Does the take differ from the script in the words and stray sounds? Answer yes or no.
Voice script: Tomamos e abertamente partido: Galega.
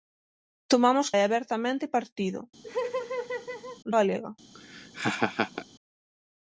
yes